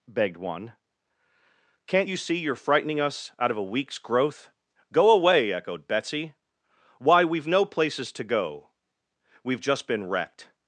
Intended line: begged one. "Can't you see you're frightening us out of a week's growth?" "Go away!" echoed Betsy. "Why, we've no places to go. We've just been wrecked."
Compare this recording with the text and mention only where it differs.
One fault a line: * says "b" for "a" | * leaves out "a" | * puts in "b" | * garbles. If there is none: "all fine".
all fine